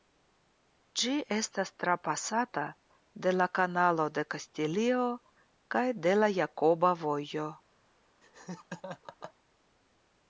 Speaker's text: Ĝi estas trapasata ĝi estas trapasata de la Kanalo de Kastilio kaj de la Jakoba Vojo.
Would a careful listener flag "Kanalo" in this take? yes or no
no